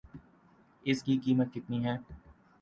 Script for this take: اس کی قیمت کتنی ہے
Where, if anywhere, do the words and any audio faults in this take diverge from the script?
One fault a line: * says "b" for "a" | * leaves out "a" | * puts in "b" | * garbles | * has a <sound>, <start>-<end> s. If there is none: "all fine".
all fine